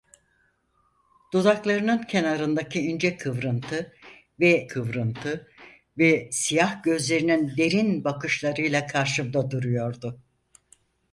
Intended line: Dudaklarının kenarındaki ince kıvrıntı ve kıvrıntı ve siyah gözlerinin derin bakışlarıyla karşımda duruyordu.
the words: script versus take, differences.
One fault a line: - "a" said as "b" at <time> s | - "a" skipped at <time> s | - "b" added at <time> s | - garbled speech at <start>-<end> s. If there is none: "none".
none